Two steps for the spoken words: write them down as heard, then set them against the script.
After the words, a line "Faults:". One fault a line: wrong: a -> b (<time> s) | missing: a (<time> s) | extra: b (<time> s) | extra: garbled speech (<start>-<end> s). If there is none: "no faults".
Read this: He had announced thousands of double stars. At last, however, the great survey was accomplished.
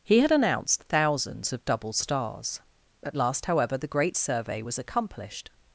He had announced thousands of double stars. At last, however, the great survey was accomplished.
Faults:
no faults